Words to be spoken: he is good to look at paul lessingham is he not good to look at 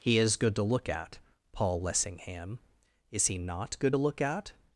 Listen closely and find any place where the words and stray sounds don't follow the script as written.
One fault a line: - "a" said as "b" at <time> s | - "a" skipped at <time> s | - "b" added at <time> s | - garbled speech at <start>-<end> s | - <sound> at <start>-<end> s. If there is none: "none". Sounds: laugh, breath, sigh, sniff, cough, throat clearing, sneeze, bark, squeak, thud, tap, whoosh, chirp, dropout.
none